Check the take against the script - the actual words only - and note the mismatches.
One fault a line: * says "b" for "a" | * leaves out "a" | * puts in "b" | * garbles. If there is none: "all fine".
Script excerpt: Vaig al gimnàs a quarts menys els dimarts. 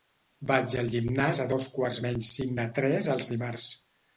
* puts in "dos"
* puts in "cinc de tres"